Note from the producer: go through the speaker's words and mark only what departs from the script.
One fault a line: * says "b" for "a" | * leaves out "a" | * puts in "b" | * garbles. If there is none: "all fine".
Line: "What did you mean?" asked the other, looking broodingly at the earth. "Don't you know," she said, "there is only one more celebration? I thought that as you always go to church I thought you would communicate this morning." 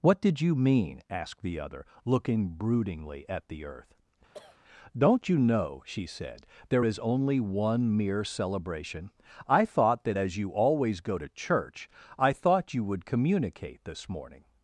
* says "mere" for "more"